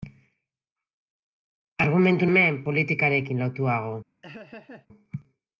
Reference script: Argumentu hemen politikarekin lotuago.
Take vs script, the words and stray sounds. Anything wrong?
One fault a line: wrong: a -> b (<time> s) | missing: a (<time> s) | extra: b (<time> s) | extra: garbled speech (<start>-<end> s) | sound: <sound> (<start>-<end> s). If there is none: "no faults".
sound: laugh (4.2-4.9 s)